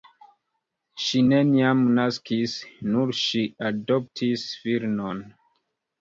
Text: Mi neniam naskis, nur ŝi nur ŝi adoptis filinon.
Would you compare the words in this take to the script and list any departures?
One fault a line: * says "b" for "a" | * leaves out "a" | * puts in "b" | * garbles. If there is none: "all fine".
* says "Ŝi" for "Mi"
* leaves out "nur ŝi"